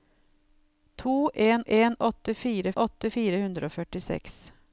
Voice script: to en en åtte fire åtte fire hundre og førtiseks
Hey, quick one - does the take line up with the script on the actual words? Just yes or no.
yes